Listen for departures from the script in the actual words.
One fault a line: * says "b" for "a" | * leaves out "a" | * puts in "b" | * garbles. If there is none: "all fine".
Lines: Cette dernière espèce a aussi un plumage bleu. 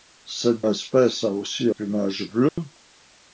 * leaves out "dernière"
* leaves out "un"